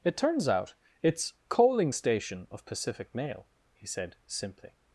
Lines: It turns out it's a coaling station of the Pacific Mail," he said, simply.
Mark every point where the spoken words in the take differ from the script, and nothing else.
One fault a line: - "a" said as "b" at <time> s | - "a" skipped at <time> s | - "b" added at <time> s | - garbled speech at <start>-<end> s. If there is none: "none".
- "a" skipped at 1.3 s
- "the" skipped at 2.6 s